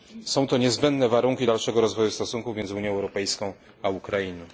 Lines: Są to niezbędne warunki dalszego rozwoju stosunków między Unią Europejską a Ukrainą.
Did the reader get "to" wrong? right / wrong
right